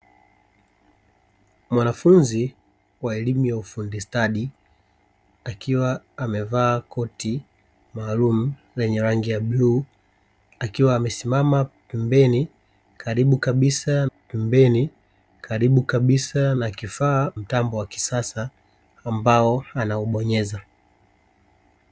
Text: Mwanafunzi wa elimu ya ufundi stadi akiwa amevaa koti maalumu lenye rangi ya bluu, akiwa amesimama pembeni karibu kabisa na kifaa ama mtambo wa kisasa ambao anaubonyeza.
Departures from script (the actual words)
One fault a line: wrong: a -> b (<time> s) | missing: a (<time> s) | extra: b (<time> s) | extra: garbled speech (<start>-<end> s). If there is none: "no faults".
extra: pembeni karibu kabisa (14.0 s)
missing: ama (17.3 s)